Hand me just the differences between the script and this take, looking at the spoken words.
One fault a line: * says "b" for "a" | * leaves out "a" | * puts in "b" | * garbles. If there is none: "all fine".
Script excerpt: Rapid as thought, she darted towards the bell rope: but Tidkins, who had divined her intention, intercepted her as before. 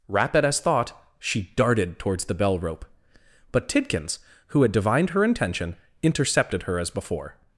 all fine